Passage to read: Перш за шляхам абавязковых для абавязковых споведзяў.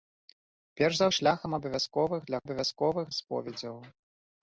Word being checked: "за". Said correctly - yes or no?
yes